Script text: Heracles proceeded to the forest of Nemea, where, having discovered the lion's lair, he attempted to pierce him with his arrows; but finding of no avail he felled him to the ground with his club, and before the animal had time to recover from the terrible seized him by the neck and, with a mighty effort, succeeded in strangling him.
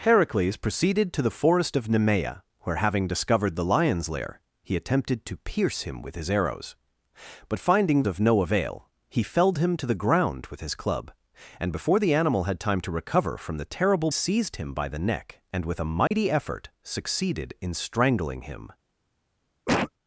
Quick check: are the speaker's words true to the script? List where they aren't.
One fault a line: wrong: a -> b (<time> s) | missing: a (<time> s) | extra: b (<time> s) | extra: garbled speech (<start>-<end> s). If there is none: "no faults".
no faults